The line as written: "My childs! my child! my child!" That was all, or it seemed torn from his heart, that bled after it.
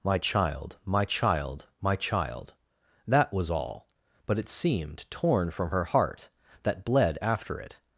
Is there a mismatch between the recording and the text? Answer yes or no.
yes